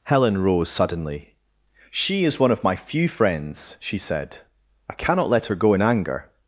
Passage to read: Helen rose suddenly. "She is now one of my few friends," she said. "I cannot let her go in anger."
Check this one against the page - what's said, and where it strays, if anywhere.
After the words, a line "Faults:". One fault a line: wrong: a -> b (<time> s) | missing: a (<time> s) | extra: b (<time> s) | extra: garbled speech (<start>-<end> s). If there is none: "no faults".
Helen rose suddenly. "She is one of my few friends," she said. "I cannot let her go in anger."
Faults:
missing: now (2.4 s)